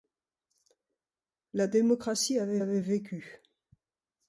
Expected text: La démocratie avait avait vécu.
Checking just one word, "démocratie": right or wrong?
right